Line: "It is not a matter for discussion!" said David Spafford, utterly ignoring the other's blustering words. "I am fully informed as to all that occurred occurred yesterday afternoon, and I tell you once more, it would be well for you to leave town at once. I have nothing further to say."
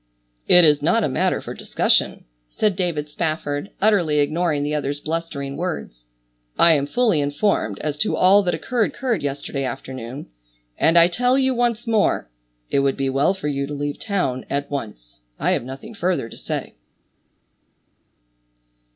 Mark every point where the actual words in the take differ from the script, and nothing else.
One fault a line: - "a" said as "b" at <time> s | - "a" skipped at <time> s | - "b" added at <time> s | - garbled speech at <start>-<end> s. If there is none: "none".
none